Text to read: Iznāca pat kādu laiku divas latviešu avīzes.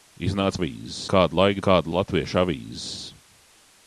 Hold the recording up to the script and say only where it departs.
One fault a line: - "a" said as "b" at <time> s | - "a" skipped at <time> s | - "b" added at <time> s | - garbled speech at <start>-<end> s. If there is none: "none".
- "pat" said as "avīzes" at 0.6 s
- "divas" said as "kādu" at 1.7 s